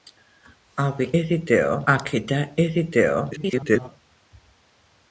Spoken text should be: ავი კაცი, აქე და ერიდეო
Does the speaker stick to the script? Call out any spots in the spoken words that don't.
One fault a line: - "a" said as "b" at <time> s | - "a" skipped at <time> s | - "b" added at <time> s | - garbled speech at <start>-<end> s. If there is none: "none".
- "კაცი" said as "ერიდეო" at 1.2 s
- garbled speech at 3.3-3.9 s